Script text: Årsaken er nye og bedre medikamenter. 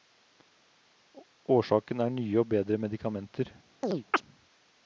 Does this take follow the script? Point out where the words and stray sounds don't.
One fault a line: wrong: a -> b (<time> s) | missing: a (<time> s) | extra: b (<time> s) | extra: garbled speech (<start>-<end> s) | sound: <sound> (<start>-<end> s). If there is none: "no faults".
sound: chirp (3.8-4.2 s)